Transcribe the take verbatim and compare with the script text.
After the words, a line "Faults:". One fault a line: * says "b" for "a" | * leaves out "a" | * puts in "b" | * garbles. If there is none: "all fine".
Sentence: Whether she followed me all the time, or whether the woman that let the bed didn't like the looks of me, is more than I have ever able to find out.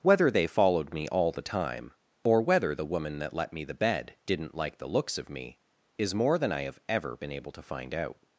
Whether they followed me all the time, or whether the woman that let me the bed didn't like the looks of me, is more than I have ever been able to find out.
Faults:
* says "they" for "she"
* puts in "me"
* puts in "been"